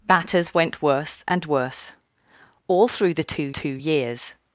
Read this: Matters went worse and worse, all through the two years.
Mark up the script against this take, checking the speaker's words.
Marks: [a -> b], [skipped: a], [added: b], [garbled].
Matters went worse and worse, all through the two [added: two] years.